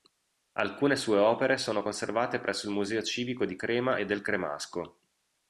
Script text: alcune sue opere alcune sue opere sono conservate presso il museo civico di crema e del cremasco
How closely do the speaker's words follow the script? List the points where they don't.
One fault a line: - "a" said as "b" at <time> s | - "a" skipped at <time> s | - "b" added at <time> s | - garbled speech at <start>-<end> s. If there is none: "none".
- "alcune sue opere" skipped at 1.6 s